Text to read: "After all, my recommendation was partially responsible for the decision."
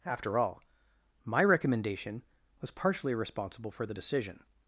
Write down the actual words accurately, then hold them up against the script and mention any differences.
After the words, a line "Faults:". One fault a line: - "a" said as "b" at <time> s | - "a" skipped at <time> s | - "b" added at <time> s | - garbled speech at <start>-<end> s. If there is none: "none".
"After all, my recommendation was partially responsible for the decision."
Faults:
none